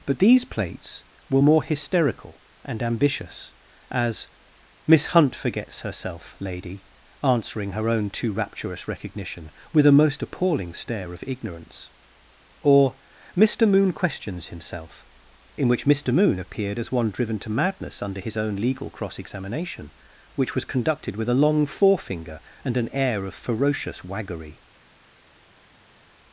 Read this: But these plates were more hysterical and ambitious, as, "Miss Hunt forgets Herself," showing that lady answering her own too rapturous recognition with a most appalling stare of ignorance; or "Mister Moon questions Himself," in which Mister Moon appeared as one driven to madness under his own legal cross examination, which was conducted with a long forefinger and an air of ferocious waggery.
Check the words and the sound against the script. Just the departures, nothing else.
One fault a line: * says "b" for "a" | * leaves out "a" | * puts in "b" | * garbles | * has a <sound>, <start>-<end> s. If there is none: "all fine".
* leaves out "showing that"